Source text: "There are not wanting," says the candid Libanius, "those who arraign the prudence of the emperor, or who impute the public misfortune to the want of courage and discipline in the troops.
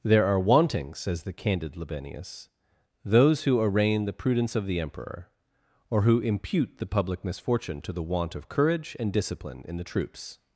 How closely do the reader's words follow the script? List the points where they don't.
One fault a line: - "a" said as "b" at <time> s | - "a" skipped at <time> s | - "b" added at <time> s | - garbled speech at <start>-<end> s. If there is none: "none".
- "not" skipped at 0.4 s